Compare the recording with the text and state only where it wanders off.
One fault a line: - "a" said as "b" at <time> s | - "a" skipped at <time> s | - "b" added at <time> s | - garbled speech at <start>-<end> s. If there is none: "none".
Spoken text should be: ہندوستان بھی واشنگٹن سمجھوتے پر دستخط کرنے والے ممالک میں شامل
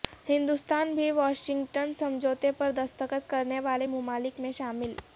none